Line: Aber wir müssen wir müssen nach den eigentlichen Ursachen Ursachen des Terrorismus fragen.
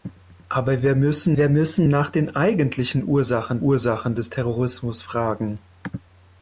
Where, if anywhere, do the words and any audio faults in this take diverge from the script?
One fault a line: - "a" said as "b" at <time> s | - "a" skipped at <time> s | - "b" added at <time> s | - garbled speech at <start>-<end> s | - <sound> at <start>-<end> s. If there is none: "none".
none